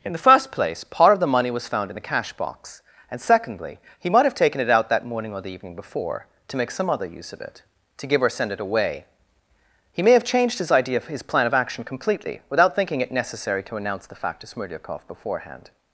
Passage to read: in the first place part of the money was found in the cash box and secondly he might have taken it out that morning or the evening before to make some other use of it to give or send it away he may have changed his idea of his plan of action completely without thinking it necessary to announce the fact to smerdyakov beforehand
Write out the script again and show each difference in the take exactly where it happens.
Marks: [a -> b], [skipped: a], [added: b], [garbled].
in the first place part of the money was found in the cash box and secondly he might have taken it out that morning or the evening before to make some other use of it to give or send it away he may have changed his idea of his plan of action completely without thinking it necessary to announce the fact to smerdyakov beforehand